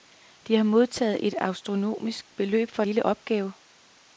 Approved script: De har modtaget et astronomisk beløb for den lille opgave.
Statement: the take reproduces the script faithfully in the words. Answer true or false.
false